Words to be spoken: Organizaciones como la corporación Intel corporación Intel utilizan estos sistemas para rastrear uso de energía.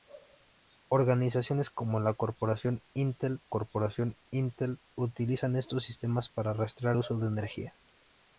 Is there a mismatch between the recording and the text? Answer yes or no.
no